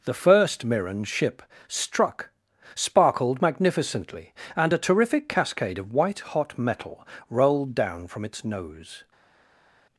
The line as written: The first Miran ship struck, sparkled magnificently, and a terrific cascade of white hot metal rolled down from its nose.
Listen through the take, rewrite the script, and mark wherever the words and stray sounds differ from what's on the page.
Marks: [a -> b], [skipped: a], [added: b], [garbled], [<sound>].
The first Miran ship struck, sparkled magnificently, and a terrific cascade of white hot metal rolled down from its nose.